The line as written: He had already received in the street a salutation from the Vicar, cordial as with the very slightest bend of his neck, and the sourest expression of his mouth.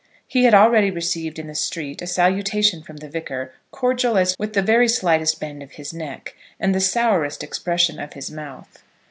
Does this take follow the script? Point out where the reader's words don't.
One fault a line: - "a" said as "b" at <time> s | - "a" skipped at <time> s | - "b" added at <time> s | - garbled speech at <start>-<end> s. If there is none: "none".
none